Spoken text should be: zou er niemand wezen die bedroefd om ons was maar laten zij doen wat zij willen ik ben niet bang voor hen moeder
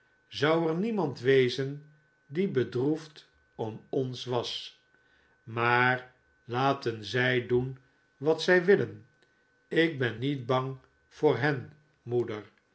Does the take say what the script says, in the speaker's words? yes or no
yes